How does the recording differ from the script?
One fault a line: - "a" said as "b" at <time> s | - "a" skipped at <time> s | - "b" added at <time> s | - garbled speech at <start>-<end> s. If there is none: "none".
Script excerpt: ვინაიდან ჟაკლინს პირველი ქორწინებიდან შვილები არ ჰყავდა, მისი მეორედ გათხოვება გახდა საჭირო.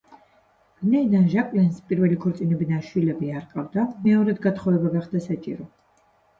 - "მისი" skipped at 3.8 s